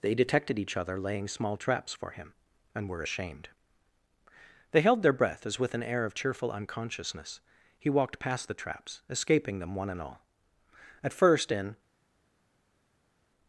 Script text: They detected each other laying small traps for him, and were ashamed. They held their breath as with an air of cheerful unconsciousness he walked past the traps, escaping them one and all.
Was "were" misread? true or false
false